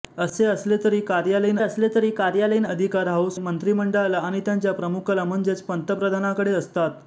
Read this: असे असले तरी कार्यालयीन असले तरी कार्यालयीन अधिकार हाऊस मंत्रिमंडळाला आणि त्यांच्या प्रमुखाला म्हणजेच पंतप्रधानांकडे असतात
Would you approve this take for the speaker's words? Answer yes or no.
yes